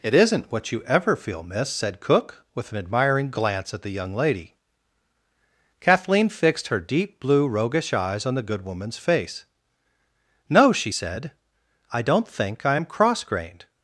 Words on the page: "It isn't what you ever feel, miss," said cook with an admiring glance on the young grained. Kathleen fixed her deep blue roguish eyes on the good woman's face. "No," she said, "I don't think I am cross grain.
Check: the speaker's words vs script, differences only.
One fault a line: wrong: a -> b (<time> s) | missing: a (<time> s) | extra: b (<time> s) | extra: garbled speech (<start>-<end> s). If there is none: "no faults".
wrong: on -> at (3.7 s)
wrong: grained -> lady (4.2 s)
wrong: grain -> grained (13.2 s)